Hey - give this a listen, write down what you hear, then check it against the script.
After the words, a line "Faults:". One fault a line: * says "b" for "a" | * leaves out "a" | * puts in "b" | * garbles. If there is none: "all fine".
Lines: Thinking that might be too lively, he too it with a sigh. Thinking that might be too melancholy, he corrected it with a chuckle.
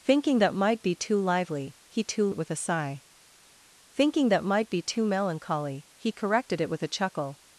Thinking that might be too lively, he too it with a sigh. Thinking that might be too melancholy, he corrected it with a chuckle.
Faults:
all fine